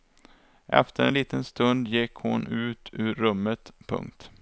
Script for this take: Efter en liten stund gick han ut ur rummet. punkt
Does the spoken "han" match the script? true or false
false